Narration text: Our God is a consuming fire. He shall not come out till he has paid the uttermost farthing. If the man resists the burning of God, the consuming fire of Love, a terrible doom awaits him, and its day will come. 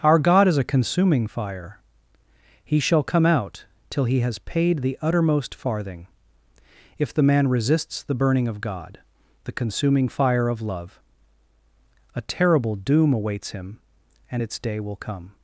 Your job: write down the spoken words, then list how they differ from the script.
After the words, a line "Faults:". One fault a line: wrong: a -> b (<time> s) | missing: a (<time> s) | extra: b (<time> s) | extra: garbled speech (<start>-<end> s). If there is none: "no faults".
Our God is a consuming fire. He shall come out till he has paid the uttermost farthing. If the man resists the burning of God, the consuming fire of Love, a terrible doom awaits him, and its day will come.
Faults:
missing: not (3.0 s)